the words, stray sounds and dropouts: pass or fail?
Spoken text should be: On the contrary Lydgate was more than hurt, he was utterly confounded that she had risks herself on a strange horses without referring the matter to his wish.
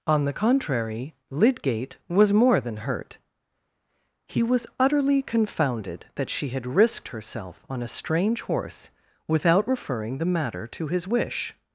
fail